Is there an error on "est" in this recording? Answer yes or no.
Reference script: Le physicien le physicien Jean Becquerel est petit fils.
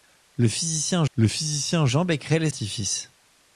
no